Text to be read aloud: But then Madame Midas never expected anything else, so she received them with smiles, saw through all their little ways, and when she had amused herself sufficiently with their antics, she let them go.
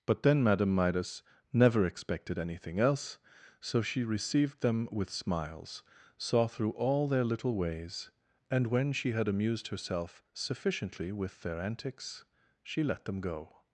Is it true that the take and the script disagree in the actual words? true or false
false